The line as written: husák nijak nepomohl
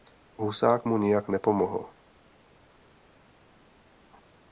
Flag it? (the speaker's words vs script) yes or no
yes